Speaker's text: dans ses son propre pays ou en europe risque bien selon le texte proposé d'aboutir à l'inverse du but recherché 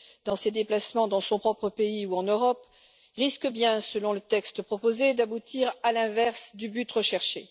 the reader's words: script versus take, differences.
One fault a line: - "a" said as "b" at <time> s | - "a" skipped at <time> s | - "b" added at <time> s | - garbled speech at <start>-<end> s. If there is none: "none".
- "déplacements dans" added at 0.5 s